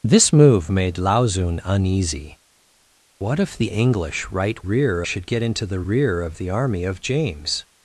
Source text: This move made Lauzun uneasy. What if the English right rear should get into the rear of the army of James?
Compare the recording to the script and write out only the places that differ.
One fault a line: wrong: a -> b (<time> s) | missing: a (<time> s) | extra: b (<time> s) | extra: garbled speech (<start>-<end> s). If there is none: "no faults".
no faults